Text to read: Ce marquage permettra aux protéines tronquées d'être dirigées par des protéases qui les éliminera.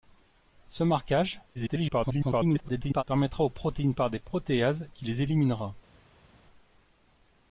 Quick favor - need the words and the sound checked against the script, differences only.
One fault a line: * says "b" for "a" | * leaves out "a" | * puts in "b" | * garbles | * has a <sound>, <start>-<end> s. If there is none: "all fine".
* garbles
* leaves out "tronquées d'être dirigées"